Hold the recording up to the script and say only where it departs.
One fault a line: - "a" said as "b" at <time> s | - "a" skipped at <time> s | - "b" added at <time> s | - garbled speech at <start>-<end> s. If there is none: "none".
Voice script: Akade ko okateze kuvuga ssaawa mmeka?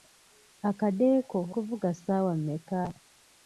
- "okateze" skipped at 1.4 s